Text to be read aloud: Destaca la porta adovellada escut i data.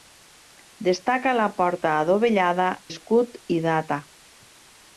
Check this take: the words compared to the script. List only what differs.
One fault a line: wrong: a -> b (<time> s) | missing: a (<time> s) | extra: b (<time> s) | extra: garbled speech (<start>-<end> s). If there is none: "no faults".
no faults